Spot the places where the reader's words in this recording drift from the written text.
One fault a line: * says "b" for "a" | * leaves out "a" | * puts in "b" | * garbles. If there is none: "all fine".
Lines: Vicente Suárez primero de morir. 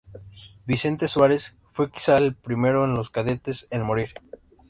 * puts in "fue quizá el"
* puts in "los cadetes en"